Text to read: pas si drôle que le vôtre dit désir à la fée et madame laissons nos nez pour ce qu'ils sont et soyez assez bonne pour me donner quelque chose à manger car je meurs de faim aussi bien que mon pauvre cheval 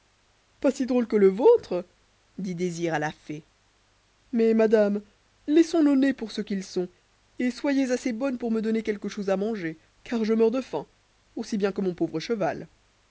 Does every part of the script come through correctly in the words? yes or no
no